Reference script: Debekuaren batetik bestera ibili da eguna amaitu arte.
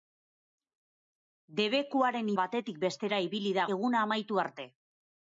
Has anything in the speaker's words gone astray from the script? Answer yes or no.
no